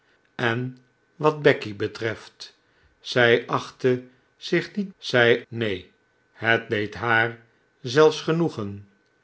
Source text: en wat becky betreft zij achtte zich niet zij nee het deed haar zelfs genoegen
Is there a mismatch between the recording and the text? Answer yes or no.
no